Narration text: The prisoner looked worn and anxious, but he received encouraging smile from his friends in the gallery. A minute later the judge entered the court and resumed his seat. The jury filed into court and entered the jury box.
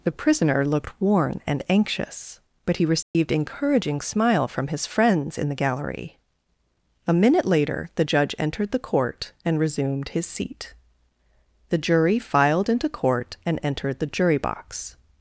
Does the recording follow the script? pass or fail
pass